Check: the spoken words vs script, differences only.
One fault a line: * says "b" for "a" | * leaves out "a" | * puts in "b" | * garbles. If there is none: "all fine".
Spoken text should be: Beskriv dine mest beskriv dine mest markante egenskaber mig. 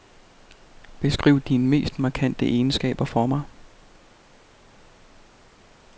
* leaves out "beskriv dine mest"
* puts in "for"